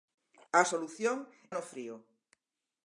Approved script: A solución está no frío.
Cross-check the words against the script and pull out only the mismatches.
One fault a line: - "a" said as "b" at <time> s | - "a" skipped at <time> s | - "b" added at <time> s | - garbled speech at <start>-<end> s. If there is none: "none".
- "está" skipped at 1.2 s